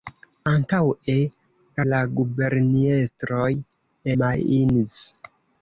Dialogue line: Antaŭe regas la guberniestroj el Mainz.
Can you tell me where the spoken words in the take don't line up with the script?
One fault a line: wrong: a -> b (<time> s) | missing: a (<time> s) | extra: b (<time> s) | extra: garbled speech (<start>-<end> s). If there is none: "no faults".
missing: regas (1.2 s)
missing: el (3.5 s)